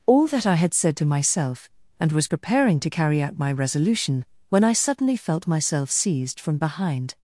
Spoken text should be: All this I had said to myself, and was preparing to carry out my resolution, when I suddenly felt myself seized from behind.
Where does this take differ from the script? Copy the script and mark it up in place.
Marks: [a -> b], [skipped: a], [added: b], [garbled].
All [this -> that] I had said to myself, and was preparing to carry out my resolution, when I suddenly felt myself seized from behind.